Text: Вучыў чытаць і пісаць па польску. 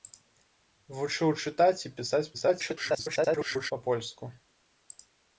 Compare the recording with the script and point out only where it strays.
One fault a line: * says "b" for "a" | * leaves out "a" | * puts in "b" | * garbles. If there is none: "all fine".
* garbles